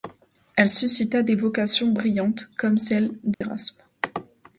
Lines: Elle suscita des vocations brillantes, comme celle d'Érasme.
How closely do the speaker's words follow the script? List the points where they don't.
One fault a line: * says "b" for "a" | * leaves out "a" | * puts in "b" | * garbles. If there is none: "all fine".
all fine